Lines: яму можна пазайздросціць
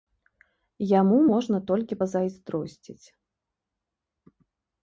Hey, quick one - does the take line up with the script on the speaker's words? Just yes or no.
no